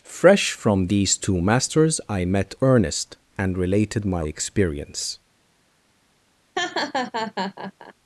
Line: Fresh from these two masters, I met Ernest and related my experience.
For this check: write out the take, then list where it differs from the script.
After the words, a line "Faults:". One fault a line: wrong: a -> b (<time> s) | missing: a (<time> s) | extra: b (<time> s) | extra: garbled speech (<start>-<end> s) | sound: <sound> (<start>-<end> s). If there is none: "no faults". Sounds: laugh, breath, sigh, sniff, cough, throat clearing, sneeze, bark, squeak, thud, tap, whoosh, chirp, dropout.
Fresh from these two masters, I met Ernest and related my experience.
Faults:
sound: laugh (6.6-7.9 s)